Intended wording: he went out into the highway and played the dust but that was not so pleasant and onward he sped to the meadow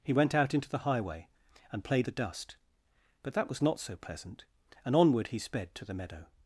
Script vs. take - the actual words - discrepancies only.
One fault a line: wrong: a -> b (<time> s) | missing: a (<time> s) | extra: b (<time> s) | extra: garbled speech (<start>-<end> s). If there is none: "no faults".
no faults